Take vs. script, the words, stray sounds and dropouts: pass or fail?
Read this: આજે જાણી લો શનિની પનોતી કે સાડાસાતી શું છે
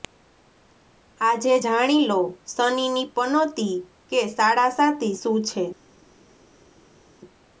pass